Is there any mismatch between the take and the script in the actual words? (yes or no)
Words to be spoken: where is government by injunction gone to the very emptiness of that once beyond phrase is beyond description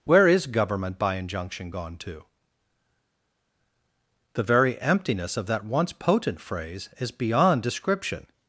yes